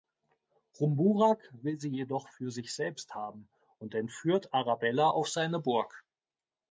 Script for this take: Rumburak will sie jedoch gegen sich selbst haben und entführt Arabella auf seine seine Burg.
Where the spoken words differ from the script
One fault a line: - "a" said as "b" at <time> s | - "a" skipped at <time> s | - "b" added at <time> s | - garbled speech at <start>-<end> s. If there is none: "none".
- "gegen" said as "für" at 2.3 s
- "seine" skipped at 5.6 s